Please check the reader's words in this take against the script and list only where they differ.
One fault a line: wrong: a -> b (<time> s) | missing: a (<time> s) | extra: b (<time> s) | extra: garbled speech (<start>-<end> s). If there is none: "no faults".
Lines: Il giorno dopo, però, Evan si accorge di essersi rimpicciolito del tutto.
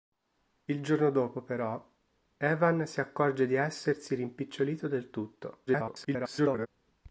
extra: garbled speech (5.7-6.7 s)